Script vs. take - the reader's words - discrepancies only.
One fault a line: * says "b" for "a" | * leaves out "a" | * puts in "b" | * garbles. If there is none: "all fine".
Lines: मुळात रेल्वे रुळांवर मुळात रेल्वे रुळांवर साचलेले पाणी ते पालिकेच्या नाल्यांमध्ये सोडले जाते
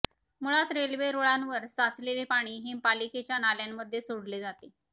* leaves out "मुळात रेल्वे रुळांवर"
* says "हे" for "ते"